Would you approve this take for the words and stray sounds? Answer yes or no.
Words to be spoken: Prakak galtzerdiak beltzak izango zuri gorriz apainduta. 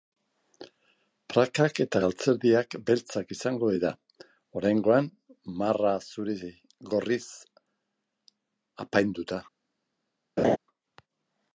no